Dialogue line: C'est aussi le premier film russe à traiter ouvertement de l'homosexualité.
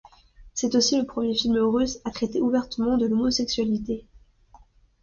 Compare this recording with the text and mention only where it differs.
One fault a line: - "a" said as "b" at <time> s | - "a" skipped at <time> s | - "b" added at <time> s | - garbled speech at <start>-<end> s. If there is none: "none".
none